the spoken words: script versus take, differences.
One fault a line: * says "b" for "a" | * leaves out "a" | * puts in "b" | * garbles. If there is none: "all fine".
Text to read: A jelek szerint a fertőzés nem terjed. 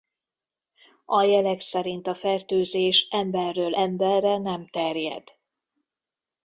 * puts in "emberről emberre"